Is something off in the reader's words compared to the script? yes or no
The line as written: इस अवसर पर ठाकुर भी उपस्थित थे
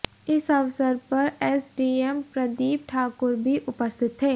yes